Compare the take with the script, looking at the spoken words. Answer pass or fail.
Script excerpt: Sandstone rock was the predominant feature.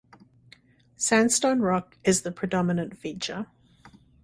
fail